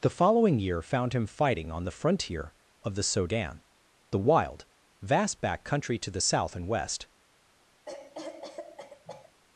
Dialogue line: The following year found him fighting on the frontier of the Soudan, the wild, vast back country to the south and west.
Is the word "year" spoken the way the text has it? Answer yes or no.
yes